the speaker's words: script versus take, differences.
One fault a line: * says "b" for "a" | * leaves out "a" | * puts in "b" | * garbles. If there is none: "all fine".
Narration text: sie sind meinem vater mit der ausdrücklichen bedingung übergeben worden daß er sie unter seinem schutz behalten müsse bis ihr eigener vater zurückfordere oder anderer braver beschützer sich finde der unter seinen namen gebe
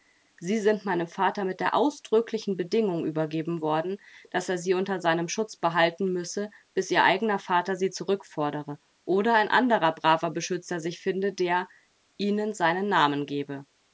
* puts in "sie"
* puts in "ein"
* says "ihnen" for "unter"